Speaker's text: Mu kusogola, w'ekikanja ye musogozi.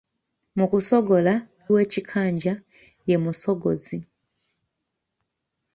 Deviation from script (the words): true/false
false